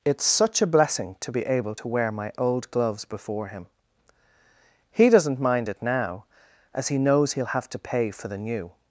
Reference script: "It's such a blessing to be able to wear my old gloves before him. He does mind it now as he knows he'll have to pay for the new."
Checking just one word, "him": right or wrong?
right